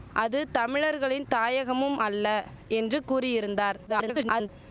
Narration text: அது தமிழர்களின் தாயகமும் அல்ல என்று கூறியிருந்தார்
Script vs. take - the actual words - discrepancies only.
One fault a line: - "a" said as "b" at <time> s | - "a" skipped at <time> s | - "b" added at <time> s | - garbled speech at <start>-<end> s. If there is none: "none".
- garbled speech at 3.9-4.5 s